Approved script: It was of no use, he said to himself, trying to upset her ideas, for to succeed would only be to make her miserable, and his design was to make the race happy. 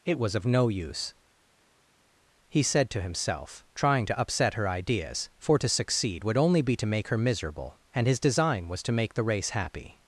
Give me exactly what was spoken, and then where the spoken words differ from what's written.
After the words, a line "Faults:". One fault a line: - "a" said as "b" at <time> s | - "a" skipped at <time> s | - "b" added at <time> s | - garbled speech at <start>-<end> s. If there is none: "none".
It was of no use, he said to himself, trying to upset her ideas, for to succeed would only be to make her miserable, and his design was to make the race happy.
Faults:
none